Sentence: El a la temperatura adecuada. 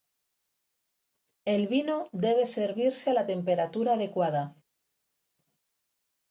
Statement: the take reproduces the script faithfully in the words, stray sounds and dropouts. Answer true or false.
false